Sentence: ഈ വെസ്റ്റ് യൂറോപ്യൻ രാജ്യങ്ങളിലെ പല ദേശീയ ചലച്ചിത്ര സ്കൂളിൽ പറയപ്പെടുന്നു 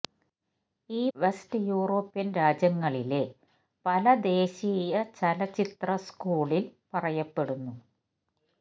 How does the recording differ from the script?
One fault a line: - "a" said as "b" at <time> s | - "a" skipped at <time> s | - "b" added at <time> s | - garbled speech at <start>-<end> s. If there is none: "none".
none